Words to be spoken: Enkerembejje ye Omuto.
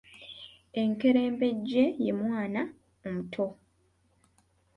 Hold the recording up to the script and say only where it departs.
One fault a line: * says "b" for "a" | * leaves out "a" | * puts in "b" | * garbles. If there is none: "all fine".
* puts in "Mwana"